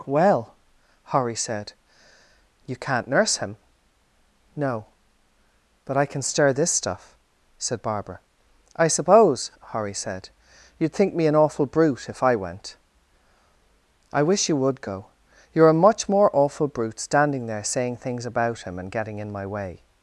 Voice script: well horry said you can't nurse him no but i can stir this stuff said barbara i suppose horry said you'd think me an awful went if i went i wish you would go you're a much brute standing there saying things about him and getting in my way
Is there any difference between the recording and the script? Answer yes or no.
yes